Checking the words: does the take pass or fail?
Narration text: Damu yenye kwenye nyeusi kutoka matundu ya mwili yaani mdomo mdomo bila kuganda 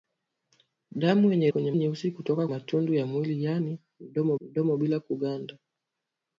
pass